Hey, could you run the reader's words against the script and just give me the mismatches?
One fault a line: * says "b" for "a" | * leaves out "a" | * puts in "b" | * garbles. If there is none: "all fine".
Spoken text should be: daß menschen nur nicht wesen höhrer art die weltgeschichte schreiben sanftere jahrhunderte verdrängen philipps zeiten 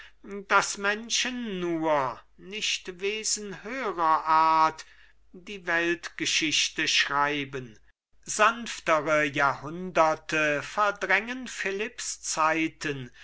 all fine